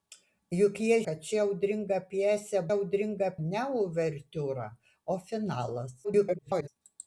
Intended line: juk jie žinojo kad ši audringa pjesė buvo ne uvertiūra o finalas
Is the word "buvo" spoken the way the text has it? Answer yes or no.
no